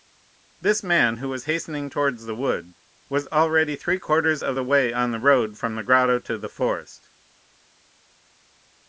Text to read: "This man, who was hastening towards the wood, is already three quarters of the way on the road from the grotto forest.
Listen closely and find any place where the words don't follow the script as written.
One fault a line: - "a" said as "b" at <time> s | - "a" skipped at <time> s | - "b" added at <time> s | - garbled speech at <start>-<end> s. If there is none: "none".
- "is" said as "was" at 3.1 s
- "to the" added at 6.2 s